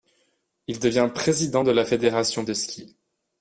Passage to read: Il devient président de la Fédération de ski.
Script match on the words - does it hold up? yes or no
yes